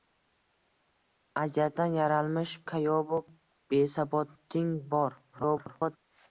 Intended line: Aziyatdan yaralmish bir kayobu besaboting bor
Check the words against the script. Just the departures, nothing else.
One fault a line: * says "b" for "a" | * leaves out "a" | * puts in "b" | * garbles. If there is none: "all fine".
* leaves out "bir"
* garbles